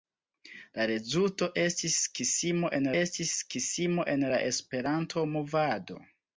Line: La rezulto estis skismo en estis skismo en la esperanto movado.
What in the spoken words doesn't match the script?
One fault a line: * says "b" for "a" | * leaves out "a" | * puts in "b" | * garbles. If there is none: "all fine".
all fine